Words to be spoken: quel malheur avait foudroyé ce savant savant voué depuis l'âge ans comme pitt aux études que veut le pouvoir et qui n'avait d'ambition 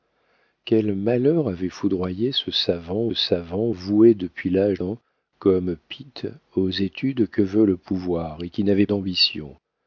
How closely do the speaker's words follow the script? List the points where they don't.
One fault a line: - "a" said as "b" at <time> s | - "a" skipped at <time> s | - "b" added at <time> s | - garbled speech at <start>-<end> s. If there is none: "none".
none